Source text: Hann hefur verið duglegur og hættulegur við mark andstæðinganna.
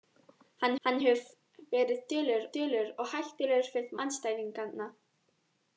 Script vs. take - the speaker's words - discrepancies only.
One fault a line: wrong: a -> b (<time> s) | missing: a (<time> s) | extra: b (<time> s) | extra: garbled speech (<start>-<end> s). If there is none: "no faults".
extra: hann (0.8 s)
extra: duglegur (2.6 s)
missing: mark (4.0 s)